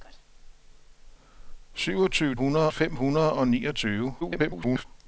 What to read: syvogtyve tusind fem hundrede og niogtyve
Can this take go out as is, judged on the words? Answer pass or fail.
fail